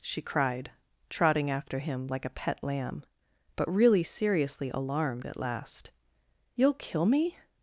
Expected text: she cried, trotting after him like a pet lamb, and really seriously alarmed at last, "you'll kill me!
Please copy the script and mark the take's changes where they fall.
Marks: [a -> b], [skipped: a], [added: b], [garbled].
she cried, trotting after him like a pet lamb, [and -> but] really seriously alarmed at last, "you'll kill me!